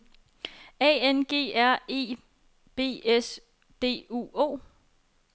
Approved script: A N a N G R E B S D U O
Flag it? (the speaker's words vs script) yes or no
yes